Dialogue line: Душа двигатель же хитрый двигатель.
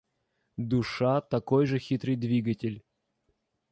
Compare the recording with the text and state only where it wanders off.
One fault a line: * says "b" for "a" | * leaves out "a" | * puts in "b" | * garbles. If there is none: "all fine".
* says "такой" for "двигатель"